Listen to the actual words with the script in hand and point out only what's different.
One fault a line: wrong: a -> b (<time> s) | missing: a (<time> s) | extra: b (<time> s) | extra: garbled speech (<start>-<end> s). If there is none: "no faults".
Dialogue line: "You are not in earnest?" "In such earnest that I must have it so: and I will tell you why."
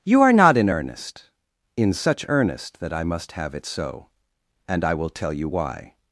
no faults